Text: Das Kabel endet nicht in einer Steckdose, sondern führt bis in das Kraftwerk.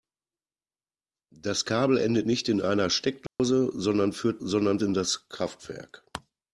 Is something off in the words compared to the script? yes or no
yes